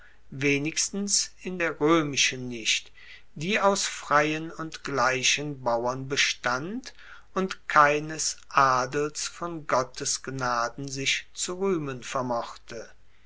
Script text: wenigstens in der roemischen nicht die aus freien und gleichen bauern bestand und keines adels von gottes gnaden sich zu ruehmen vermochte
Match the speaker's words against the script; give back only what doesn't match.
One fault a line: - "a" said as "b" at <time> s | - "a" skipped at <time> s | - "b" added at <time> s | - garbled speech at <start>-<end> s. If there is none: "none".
none